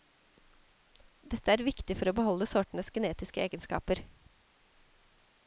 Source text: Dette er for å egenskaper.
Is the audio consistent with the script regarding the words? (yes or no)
no